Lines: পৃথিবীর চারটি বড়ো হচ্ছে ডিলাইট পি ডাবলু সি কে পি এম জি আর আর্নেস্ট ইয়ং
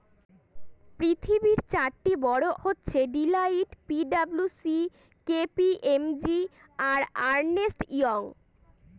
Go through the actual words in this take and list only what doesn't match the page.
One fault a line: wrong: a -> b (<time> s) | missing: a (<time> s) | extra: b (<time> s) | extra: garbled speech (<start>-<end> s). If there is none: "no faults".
no faults